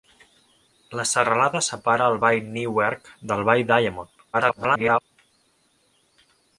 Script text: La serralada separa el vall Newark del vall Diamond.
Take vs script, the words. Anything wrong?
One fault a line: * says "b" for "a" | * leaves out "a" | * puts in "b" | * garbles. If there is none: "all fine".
* garbles